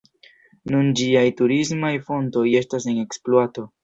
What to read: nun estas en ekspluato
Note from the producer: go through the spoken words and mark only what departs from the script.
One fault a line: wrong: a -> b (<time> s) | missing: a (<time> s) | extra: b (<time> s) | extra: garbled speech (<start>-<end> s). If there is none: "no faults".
extra: ĝiaj turismaj fontoj (1.0 s)